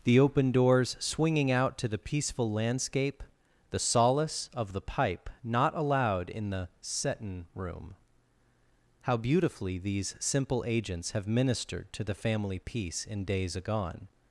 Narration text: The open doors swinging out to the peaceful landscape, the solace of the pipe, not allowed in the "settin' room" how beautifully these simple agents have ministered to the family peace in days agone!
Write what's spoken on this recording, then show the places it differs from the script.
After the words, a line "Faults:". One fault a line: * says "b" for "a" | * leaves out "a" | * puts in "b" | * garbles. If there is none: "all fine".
The open doors swinging out to the peaceful landscape, the solace of the pipe, not allowed in the "settin' room" how beautifully these simple agents have ministered to the family peace in days agone!
Faults:
all fine